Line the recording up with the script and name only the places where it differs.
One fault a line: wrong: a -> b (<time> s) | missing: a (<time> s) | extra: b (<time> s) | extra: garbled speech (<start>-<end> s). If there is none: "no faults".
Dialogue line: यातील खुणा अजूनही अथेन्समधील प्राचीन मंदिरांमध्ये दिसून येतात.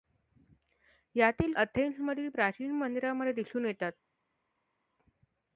missing: खुणा अजूनही (1.5 s)